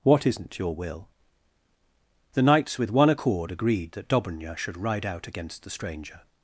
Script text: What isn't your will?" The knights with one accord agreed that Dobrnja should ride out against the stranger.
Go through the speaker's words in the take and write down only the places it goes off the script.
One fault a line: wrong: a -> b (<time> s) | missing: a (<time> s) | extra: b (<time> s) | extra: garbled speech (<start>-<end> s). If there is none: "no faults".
no faults